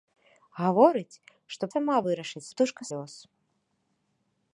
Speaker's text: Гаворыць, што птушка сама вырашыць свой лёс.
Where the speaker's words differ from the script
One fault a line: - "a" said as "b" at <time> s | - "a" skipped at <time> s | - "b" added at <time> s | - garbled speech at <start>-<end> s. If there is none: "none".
- "птушка" skipped at 1.6 s
- "свой" said as "птушка" at 2.5 s